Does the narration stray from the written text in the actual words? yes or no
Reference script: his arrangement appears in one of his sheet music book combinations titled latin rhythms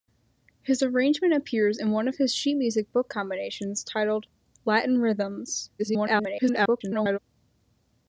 yes